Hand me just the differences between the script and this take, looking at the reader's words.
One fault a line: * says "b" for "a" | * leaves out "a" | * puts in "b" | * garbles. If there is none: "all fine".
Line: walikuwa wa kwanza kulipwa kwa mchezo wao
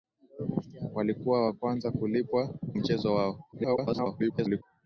* leaves out "kwa"
* garbles